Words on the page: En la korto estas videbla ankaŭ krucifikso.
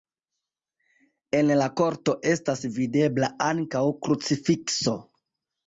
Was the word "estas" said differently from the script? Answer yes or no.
no